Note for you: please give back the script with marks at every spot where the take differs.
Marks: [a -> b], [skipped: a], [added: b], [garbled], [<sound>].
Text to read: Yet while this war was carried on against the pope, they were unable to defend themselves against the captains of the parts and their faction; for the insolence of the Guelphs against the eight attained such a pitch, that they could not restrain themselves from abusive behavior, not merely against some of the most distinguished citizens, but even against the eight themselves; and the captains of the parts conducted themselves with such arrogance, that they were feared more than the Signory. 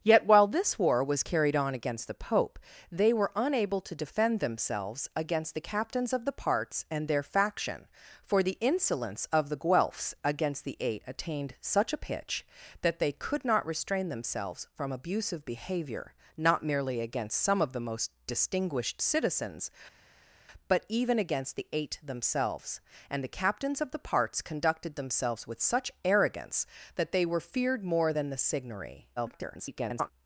Yet while this war was carried on against the pope, they were unable to defend themselves against the captains of the parts and their faction; for the insolence of the Guelphs against the eight attained such a pitch, that they could not restrain themselves from abusive behavior, not merely against some of the most distinguished citizens, but even against the eight themselves; and the captains of the parts conducted themselves with such arrogance, that they were feared more than the Signory. [garbled]